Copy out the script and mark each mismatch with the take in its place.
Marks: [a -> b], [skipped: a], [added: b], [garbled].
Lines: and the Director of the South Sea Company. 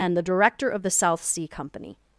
and the Director of the South Sea Company.